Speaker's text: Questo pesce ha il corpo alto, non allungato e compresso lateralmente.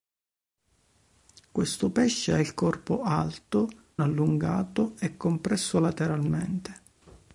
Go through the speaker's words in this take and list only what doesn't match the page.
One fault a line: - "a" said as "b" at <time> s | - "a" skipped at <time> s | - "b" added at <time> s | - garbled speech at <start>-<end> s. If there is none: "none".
- "non" skipped at 3.7 s